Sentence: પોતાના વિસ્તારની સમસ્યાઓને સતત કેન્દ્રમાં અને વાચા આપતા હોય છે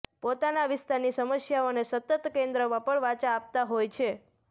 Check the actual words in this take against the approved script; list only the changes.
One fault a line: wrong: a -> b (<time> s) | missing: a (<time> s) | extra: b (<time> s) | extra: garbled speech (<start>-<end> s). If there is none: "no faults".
wrong: અને -> પણ (2.9 s)